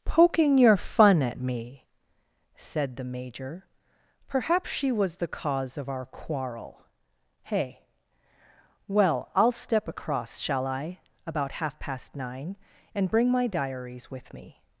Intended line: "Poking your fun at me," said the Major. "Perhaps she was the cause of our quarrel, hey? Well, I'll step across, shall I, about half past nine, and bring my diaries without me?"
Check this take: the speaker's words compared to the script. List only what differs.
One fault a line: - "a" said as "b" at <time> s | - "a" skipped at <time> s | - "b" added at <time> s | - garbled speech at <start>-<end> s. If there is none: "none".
- "without" said as "with" at 14.1 s